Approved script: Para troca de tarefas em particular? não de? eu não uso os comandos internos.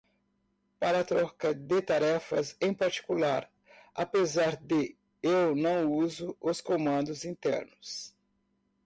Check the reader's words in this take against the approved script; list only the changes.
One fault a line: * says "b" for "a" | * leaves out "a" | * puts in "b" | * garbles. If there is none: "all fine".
* says "apesar" for "não"